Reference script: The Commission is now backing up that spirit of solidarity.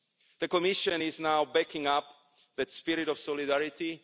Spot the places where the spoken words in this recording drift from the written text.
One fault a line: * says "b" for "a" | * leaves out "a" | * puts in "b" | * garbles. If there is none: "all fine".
all fine